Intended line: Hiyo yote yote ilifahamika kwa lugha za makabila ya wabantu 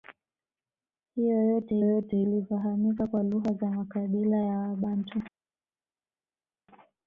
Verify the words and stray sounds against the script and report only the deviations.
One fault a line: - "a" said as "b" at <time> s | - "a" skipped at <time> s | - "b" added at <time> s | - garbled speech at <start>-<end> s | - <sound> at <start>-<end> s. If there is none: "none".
none